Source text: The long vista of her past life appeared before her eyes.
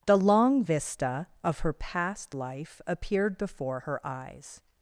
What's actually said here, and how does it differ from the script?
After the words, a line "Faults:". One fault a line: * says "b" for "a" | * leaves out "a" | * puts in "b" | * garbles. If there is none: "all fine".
The long vista of her past life appeared before her eyes.
Faults:
all fine